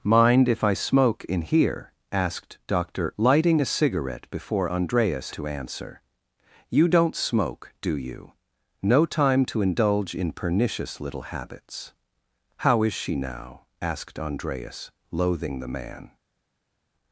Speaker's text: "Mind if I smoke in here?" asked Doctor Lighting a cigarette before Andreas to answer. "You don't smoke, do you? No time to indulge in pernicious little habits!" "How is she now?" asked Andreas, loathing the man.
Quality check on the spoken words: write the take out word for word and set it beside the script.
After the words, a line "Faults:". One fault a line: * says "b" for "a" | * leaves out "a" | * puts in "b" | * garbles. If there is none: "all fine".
"Mind if I smoke in here?" asked Doctor Lighting a cigarette before Andreas to answer. "You don't smoke, do you? No time to indulge in pernicious little habits!" "How is she now?" asked Andreas, loathing the man.
Faults:
all fine